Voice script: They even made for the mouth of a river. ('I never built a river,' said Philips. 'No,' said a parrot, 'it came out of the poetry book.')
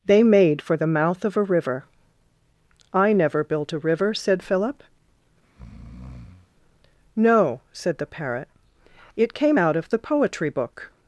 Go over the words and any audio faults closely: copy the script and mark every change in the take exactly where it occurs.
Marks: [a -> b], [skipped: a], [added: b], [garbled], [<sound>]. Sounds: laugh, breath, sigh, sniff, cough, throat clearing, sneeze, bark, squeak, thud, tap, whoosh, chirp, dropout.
They [skipped: even] made for the mouth of a river. ('I never built a river,' said [Philips. -> Philip] [breath] 'No,' said [a -> the] parrot, 'it came out of the poetry book.')